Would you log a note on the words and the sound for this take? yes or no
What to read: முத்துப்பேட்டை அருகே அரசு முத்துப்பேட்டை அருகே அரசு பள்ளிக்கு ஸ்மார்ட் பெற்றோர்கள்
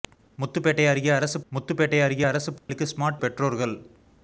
yes